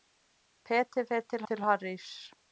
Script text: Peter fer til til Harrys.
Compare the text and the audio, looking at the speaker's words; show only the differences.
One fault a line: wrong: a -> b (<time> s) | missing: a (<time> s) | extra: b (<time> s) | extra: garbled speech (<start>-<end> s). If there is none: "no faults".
no faults